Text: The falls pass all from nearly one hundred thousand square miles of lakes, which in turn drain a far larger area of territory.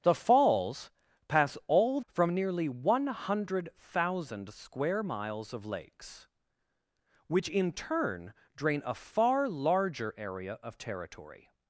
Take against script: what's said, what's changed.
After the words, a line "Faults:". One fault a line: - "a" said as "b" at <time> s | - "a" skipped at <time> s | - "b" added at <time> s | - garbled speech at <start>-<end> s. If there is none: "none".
The falls pass all from nearly one hundred thousand square miles of lakes, which in turn drain a far larger area of territory.
Faults:
none